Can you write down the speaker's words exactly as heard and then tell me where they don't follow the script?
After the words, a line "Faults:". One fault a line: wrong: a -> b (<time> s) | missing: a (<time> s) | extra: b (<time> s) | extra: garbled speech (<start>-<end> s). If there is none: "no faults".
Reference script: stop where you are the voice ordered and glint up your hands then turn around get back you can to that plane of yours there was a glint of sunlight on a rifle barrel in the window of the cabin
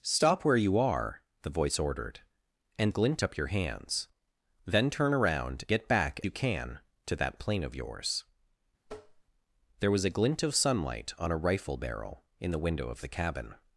stop where you are the voice ordered and glint up your hands then turn around get back you can to that plane of yours there was a glint of sunlight on a rifle barrel in the window of the cabin
Faults:
no faults